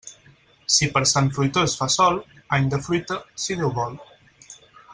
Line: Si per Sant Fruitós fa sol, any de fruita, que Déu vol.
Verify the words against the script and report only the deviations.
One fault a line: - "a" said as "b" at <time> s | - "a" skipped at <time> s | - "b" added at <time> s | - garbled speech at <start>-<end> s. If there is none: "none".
- "que" said as "si" at 3.5 s